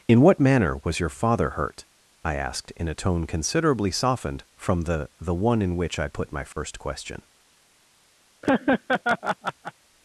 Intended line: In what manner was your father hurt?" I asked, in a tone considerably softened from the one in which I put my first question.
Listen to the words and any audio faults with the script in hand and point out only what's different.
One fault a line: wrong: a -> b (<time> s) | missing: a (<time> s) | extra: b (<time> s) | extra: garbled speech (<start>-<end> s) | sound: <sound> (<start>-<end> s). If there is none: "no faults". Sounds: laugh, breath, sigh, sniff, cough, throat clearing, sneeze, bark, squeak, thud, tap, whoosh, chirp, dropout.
extra: the (5.2 s)
sound: dropout (6.5-6.6 s)
sound: laugh (8.4-9.7 s)